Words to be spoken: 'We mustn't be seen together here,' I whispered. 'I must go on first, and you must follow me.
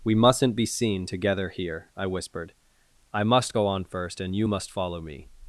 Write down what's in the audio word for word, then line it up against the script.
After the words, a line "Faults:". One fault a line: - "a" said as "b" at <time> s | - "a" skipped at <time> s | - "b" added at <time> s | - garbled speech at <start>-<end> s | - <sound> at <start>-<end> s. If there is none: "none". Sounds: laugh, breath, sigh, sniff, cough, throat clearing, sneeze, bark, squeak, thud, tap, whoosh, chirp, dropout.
'We mustn't be seen together here,' I whispered. 'I must go on first, and you must follow me.
Faults:
none